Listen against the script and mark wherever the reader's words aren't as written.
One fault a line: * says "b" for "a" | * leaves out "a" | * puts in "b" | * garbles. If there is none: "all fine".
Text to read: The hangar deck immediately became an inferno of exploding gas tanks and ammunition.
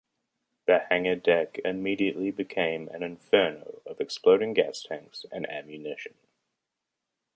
all fine